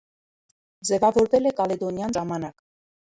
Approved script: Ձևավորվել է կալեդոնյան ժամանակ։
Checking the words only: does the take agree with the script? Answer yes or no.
yes